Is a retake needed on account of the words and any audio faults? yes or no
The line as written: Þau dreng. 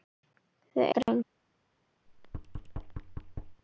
yes